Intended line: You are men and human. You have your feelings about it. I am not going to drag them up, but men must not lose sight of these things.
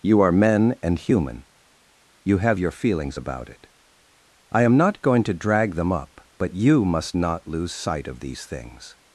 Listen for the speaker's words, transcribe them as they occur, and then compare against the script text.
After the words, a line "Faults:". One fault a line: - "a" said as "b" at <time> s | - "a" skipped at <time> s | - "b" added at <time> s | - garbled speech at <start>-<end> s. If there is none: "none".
You are men and human. You have your feelings about it. I am not going to drag them up, but you must not lose sight of these things.
Faults:
- "men" said as "you" at 6.5 s